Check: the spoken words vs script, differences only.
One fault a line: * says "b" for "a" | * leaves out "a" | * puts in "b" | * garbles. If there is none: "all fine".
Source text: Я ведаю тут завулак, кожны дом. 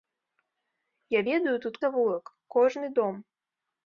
all fine